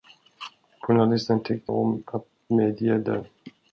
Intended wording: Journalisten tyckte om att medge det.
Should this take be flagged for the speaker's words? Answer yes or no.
no